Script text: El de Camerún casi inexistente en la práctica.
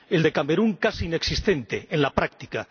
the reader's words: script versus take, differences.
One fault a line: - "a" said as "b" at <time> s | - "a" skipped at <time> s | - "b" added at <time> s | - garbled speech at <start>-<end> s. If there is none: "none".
none